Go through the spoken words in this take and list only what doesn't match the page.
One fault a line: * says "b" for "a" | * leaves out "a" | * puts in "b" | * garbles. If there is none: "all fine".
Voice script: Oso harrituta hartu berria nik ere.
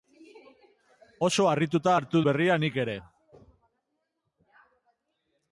all fine